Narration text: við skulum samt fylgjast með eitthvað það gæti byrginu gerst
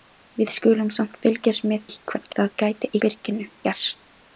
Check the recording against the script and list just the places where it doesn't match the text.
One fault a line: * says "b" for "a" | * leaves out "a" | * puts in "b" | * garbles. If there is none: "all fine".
all fine